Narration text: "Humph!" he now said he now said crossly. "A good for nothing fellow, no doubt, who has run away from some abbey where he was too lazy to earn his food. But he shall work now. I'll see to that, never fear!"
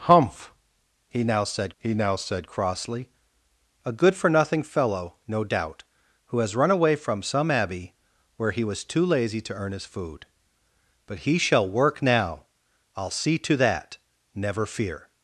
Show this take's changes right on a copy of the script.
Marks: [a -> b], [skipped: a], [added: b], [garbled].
"Humph!" he now said he now said crossly. "A good for nothing fellow, no doubt, who has run away from some abbey where he was too lazy to earn his food. But he shall work now. I'll see to that, never fear!"